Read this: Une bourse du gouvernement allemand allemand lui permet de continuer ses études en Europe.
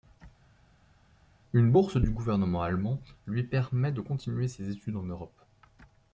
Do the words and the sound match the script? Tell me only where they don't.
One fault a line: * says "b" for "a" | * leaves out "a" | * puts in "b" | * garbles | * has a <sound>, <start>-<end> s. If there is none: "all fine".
* leaves out "allemand"